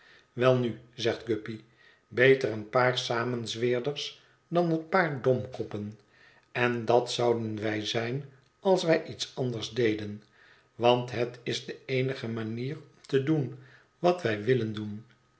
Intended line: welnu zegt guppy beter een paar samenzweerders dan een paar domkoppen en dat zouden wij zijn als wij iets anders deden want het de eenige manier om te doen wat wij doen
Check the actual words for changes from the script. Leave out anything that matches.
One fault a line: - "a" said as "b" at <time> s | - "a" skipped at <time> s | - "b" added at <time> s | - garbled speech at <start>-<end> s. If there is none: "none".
- "is" added at 11.4 s
- "willen" added at 14.4 s